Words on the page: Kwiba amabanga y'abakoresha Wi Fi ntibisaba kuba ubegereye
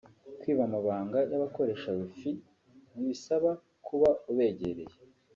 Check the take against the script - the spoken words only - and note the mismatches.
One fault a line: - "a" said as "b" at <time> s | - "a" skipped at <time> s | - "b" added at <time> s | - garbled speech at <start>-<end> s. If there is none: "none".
none